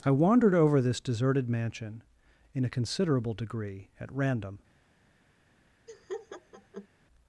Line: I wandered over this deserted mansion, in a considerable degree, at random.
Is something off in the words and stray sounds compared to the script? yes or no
yes